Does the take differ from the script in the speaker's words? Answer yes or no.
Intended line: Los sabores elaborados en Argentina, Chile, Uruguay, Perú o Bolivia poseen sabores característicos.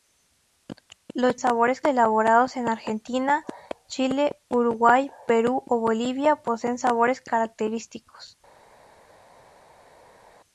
no